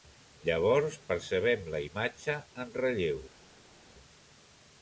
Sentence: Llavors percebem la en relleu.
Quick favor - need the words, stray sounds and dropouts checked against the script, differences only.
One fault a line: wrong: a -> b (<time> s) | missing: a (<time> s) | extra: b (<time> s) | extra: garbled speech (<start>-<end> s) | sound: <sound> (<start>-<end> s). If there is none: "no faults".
extra: imatge (1.9 s)